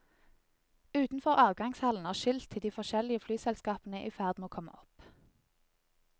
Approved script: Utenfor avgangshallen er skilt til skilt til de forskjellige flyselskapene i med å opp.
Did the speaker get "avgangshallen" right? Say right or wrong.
right